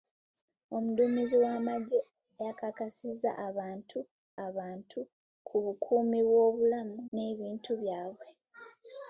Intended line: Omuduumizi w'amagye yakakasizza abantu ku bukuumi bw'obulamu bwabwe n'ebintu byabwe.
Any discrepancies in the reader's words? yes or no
yes